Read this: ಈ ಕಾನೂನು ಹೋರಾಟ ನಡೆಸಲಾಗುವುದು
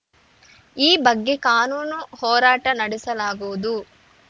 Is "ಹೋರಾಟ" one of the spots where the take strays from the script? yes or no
no